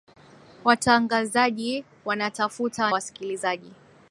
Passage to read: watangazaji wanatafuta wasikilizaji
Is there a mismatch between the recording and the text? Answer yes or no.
no